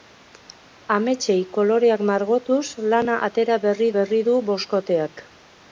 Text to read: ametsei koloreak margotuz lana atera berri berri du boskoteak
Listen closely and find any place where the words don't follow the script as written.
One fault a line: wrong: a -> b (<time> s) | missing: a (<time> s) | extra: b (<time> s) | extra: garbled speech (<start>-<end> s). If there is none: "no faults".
no faults